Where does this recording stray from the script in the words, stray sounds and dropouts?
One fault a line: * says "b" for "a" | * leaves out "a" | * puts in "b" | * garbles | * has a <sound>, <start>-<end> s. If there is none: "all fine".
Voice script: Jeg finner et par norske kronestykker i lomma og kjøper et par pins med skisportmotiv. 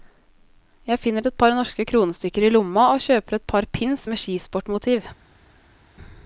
all fine